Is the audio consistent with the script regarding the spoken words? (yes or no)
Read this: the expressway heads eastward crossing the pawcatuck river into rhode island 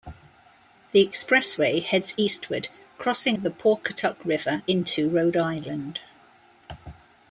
yes